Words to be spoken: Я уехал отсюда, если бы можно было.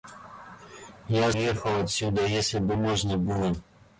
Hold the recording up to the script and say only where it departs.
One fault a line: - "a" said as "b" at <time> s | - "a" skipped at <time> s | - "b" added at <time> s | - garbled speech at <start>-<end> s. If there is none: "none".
none